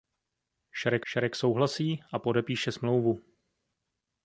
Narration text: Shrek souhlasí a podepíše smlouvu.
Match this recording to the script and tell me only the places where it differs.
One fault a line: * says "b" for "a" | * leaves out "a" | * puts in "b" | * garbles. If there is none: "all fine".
* puts in "shrek"